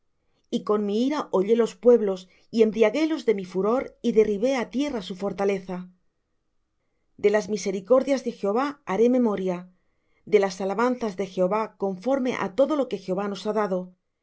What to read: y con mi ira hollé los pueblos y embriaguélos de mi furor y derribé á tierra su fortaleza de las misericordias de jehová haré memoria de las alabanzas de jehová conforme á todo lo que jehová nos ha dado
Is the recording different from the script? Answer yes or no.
no